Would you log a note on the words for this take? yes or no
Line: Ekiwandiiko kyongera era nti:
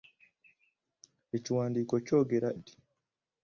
yes